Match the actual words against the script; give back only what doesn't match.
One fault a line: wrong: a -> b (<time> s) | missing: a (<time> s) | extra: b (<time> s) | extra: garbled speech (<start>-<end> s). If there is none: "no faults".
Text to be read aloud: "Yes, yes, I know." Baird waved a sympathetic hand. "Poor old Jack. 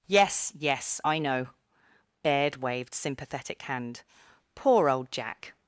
missing: a (2.9 s)